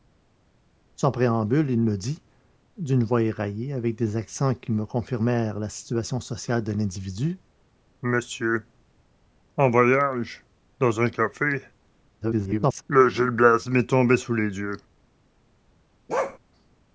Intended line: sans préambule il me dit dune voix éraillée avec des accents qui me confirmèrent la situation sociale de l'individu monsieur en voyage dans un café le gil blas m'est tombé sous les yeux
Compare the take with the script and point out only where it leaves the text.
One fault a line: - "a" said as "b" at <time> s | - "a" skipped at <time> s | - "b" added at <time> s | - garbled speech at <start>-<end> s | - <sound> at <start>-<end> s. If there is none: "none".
- garbled speech at 12.2-12.8 s
- bark at 16.1-16.4 s